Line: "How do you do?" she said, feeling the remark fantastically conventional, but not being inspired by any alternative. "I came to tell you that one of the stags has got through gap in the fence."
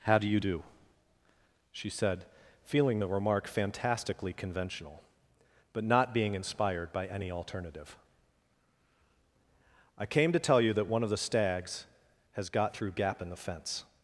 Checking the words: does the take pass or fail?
pass